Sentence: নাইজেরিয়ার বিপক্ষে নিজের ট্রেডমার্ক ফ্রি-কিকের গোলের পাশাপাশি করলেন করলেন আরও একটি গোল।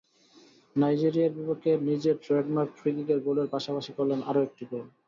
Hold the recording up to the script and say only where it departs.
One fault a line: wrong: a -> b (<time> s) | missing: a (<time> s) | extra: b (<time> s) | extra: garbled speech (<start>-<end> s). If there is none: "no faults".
missing: করলেন (4.2 s)